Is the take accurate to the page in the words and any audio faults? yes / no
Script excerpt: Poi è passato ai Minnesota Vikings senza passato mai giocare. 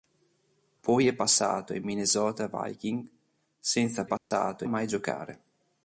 no